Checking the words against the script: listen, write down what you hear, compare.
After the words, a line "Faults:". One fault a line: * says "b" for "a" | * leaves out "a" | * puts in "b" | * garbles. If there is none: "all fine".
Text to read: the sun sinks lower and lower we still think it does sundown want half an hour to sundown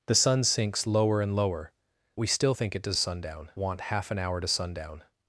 the sun sinks lower and lower we still think it does sundown want half an hour to sundown
Faults:
all fine